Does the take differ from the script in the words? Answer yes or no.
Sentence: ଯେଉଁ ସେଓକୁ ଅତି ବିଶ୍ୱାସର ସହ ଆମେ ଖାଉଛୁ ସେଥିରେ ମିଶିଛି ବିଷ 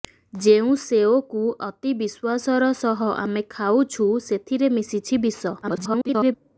yes